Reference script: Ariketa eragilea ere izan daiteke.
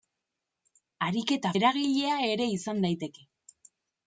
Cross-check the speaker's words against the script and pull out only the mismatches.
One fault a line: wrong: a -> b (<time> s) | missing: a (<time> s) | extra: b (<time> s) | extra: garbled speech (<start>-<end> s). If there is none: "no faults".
no faults